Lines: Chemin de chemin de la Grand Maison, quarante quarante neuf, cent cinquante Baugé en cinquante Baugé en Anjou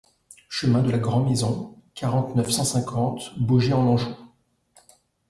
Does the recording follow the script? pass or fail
fail